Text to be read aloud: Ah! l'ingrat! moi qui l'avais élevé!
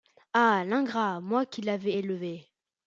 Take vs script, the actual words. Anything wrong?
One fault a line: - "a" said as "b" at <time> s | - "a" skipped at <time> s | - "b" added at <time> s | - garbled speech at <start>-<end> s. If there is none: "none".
none